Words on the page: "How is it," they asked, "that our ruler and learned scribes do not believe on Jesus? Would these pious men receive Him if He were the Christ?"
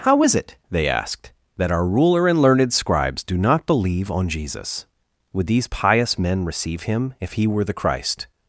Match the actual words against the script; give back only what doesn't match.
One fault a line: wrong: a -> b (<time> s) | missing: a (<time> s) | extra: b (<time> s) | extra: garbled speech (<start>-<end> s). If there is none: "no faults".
no faults